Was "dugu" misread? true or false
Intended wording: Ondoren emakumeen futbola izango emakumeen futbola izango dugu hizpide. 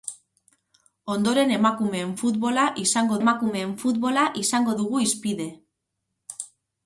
false